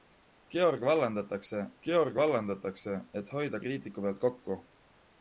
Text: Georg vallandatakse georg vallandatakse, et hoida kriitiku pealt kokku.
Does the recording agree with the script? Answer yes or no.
yes